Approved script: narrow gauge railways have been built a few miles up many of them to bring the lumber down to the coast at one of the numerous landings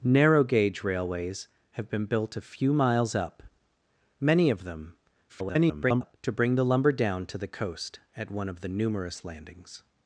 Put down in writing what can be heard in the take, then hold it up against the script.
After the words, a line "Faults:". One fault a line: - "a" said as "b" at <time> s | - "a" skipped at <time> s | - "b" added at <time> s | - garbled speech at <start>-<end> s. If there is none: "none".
narrow gauge railways have been built a few miles up many of them [garbled] to bring the lumber down to the coast at one of the numerous landings
Faults:
- garbled speech at 5.3-6.2 s